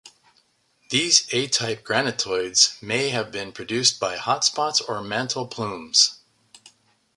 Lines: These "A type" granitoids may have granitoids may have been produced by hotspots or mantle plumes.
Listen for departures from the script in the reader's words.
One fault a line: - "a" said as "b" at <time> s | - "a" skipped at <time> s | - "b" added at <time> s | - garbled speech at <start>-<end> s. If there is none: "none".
- "granitoids may have" skipped at 3.3 s